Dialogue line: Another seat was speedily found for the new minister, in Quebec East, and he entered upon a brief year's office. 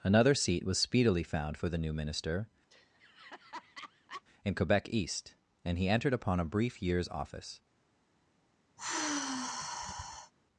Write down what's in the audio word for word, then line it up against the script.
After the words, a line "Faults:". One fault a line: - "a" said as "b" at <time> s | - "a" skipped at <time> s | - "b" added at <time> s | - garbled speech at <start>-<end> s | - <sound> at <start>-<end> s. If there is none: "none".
Another seat was speedily found for the new minister, in Quebec East, and he entered upon a brief year's office.
Faults:
- laugh at 2.7-4.2 s
- sigh at 8.8-10.3 s